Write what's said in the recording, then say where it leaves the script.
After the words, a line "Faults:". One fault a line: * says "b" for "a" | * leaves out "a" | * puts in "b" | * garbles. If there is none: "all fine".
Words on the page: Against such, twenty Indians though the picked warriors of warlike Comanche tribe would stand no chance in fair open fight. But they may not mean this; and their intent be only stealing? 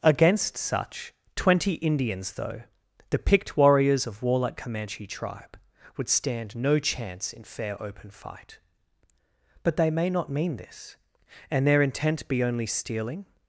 Against such, twenty Indians though the picked warriors of warlike Comanche tribe would stand no chance in fair open fight. But they may not mean this; and their intent be only stealing?
Faults:
all fine